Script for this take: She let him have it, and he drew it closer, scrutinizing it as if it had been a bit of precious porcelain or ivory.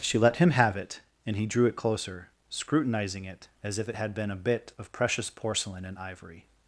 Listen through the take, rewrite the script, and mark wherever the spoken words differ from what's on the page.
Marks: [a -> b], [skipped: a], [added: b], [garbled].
She let him have it, and he drew it closer, scrutinizing it as if it had been a bit of precious porcelain [or -> and] ivory.